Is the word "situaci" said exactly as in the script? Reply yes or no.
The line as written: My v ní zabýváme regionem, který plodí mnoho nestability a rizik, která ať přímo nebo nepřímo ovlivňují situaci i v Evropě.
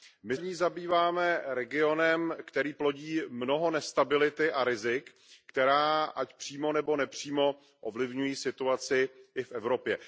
yes